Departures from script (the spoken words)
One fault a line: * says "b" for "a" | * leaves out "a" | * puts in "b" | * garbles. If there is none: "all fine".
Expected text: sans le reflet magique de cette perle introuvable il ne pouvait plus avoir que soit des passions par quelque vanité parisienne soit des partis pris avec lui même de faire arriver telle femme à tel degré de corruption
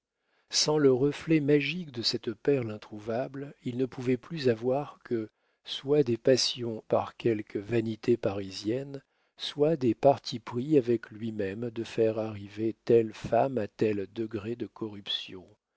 all fine